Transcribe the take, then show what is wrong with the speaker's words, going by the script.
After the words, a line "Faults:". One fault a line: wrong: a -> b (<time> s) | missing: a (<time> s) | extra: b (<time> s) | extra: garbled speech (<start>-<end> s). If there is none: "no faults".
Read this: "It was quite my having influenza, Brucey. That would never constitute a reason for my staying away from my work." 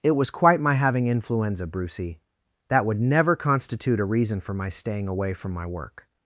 "It was quite my having influenza, Brucey. That would never constitute a reason for my staying away from my work."
Faults:
no faults